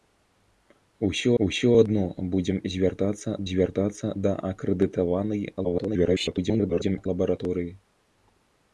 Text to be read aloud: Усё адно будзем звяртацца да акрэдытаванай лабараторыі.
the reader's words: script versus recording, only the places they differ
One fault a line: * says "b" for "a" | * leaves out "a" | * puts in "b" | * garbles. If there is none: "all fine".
* puts in "усё"
* puts in "звяртацца"
* garbles